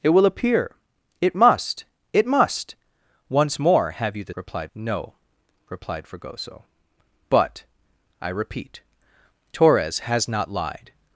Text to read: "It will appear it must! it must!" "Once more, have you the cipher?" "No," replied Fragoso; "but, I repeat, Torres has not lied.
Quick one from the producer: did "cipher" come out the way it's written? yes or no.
no